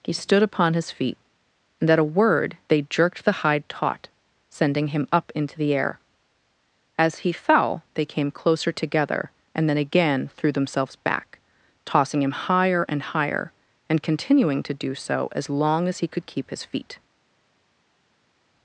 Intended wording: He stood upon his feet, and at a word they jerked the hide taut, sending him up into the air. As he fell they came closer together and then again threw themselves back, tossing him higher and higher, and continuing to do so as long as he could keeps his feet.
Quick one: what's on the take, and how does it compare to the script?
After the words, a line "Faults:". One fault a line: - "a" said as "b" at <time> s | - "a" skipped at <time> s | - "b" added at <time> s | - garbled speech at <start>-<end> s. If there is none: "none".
He stood upon his feet, and at a word they jerked the hide taut, sending him up into the air. As he fell they came closer together and then again threw themselves back, tossing him higher and higher, and continuing to do so as long as he could keep his feet.
Faults:
- "keeps" said as "keep" at 16.3 s